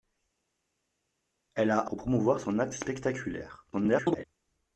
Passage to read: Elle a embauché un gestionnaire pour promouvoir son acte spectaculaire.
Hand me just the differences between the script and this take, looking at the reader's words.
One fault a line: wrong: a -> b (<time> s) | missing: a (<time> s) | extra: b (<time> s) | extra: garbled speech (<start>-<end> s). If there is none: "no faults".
missing: embauché un gestionnaire (1.9 s)
extra: garbled speech (3.7-4.2 s)